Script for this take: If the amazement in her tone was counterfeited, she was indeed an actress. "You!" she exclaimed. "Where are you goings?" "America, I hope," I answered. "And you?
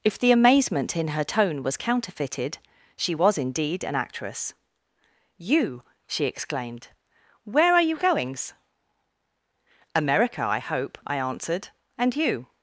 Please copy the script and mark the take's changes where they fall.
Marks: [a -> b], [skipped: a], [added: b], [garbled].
If the amazement in her tone was counterfeited, she was indeed an actress. "You!" she exclaimed. "Where are you goings?" "America, I hope," I answered. "And you?